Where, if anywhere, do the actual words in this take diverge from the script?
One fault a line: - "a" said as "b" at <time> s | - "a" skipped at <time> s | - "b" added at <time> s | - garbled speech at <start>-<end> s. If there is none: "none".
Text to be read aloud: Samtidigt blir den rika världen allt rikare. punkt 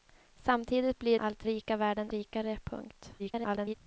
- "den" said as "allt" at 1.2 s
- "allt" skipped at 2.1 s
- garbled speech at 3.2-3.7 s